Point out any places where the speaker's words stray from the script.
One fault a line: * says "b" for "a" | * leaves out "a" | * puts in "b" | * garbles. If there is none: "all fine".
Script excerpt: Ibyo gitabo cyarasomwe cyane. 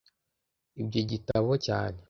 * leaves out "cyarasomwe"